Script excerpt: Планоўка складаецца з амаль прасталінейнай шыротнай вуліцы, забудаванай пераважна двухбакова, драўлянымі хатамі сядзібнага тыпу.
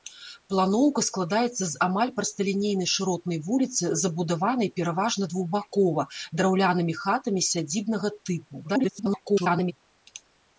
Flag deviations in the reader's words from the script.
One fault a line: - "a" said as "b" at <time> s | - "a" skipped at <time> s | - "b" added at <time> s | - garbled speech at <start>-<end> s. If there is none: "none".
- garbled speech at 8.6-9.7 s